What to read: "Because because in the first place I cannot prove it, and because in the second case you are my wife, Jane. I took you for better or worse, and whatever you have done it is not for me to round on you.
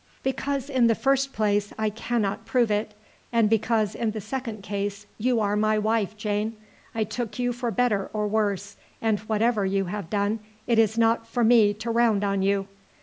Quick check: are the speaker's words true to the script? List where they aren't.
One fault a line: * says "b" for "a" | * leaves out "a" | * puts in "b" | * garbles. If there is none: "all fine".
* leaves out "because"